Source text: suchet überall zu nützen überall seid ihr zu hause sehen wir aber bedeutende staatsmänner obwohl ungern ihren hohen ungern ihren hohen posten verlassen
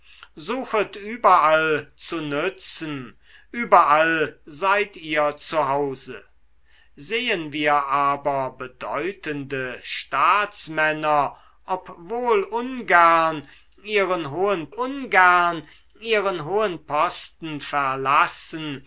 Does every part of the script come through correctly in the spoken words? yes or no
yes